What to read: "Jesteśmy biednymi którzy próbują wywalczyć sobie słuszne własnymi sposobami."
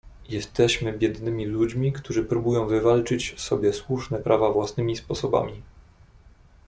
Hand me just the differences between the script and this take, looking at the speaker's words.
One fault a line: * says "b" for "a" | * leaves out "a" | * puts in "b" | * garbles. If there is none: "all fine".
* puts in "ludźmi"
* puts in "prawa"